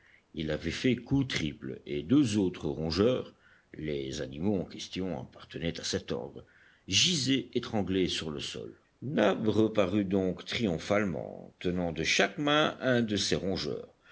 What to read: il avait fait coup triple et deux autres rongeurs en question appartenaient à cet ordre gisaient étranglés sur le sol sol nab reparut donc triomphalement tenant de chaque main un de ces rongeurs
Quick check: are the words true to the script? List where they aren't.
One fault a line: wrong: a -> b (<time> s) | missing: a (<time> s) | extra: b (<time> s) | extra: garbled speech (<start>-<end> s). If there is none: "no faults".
extra: les animaux (3.7 s)
missing: sol (8.8 s)